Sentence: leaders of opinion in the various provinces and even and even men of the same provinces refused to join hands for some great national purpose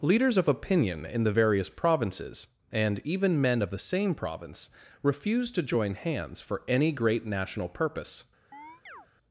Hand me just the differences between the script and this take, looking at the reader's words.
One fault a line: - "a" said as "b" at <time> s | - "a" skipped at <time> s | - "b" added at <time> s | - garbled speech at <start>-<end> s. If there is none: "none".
- "and even" skipped at 3.4 s
- "provinces" said as "province" at 4.1 s
- "some" said as "any" at 6.7 s